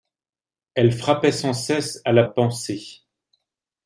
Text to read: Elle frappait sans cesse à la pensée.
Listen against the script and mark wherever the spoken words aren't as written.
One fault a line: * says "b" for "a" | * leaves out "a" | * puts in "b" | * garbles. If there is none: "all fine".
all fine